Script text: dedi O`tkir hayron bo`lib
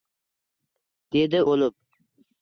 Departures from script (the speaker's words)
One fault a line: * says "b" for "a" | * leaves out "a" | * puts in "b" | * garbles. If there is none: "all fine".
* leaves out "O`tkir hayron"